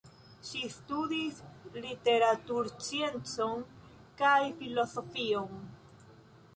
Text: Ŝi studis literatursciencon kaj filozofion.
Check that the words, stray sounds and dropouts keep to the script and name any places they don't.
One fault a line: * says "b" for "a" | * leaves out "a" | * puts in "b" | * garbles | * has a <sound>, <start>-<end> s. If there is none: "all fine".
all fine